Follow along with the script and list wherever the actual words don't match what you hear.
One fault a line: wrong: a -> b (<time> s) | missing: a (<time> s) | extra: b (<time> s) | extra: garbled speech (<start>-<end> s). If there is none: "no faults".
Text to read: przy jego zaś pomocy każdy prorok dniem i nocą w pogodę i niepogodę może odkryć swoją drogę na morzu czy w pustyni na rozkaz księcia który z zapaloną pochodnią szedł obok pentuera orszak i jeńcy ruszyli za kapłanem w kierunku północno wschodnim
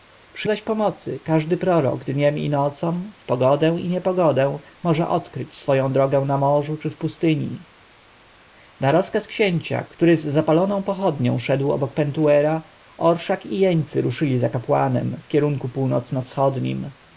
missing: jego (0.5 s)